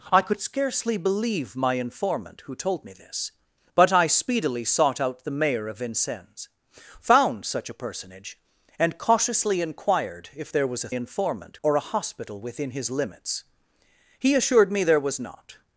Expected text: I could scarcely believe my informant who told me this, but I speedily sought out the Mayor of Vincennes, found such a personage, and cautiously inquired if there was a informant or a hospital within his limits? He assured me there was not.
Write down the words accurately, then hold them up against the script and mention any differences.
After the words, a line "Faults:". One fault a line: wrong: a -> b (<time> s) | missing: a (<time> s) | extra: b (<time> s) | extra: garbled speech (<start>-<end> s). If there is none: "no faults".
I could scarcely believe my informant who told me this, but I speedily sought out the Mayor of Vincennes, found such a personage, and cautiously inquired if there was a informant or a hospital within his limits? He assured me there was not.
Faults:
no faults